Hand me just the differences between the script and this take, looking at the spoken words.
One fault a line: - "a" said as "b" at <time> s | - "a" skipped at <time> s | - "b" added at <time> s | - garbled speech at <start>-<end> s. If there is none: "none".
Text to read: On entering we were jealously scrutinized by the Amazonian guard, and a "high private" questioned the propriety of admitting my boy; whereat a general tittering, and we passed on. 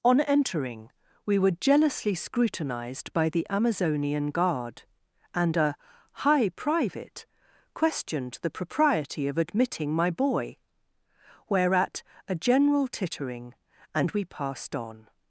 none